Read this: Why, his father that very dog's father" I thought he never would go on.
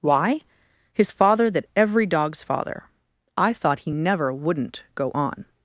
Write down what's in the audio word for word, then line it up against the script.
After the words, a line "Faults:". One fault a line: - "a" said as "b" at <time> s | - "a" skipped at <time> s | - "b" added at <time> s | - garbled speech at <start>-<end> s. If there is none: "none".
Why, his father that every dog's father" I thought he never wouldn't go on.
Faults:
- "very" said as "every" at 1.8 s
- "would" said as "wouldn't" at 4.3 s